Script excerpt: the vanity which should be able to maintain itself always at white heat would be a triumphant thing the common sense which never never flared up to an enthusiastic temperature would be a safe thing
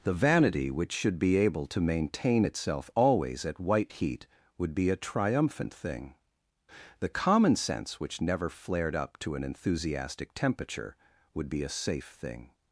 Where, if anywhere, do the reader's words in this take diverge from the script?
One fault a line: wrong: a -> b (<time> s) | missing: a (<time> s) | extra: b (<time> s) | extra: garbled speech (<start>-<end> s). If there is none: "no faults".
missing: never (8.5 s)